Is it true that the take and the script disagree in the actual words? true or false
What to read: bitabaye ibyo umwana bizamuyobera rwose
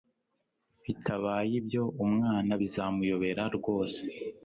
false